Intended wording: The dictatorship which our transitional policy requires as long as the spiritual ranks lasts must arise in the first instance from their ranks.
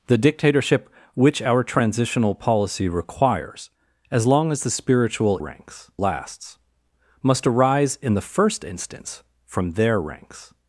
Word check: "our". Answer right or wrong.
right